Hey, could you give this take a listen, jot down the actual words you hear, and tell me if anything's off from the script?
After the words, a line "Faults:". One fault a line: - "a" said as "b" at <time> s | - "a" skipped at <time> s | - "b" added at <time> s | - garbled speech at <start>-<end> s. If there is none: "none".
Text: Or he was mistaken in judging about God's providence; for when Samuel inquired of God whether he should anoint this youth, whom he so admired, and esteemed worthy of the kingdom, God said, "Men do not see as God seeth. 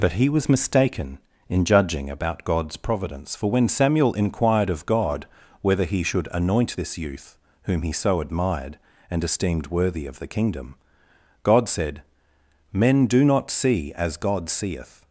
But he was mistaken in judging about God's providence; for when Samuel inquired of God whether he should anoint this youth, whom he so admired, and esteemed worthy of the kingdom, God said, "Men do not see as God seeth.
Faults:
- "Or" said as "But" at 0.0 s